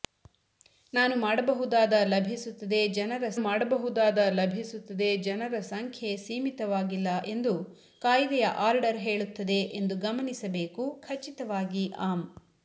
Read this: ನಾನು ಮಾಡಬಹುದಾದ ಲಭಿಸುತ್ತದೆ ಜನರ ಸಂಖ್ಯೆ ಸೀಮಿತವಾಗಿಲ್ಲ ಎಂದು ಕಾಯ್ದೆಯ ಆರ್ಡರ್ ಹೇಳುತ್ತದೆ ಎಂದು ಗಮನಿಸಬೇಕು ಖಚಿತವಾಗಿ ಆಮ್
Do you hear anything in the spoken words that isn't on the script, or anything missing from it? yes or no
yes